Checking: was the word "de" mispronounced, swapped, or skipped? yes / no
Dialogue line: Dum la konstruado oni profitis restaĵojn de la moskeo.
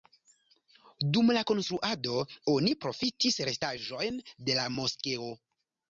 no